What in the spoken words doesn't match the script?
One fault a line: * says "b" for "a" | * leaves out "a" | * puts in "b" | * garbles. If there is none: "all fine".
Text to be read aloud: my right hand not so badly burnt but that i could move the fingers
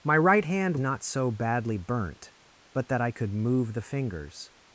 all fine